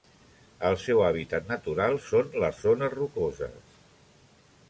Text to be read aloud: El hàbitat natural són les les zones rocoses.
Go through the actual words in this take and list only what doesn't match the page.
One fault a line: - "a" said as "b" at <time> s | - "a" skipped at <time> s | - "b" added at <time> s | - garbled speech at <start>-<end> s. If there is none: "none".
- "seu" added at 0.8 s
- "les" skipped at 2.6 s